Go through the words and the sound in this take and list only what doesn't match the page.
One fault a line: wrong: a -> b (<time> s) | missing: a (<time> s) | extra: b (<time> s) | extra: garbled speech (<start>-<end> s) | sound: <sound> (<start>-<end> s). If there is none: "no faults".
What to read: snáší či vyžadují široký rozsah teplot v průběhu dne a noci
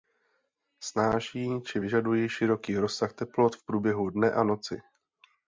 no faults